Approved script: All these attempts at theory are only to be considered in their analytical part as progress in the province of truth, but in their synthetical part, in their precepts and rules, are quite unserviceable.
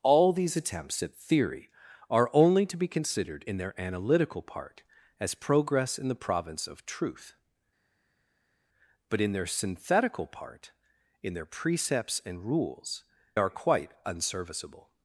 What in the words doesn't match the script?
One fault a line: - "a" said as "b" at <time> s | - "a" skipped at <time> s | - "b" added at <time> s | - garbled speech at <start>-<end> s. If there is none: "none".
none